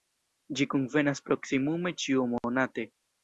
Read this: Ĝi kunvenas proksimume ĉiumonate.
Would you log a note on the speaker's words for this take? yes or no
no